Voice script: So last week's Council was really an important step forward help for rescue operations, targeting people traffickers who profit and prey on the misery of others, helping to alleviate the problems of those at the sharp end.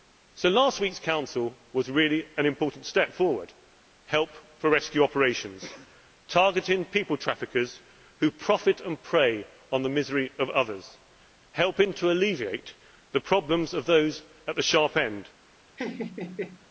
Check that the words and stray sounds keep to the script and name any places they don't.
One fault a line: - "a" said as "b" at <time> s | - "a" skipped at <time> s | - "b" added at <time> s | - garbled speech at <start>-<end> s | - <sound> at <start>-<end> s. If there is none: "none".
- laugh at 15.8-16.7 s